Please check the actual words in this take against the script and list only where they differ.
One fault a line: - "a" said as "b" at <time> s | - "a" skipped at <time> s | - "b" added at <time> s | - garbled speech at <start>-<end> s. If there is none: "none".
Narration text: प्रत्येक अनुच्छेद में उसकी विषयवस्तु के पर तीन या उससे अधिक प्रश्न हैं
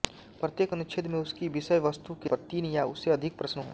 none